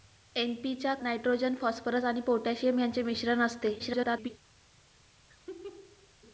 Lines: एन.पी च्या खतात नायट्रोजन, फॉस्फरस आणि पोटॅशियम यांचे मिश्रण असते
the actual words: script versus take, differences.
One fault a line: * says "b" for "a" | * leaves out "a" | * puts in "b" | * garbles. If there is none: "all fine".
* leaves out "खतात"
* garbles